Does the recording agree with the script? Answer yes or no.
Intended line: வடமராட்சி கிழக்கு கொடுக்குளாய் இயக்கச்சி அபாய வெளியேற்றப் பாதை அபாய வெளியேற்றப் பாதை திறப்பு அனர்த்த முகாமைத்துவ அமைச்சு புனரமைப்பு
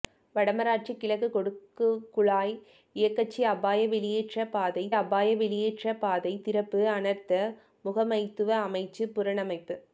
yes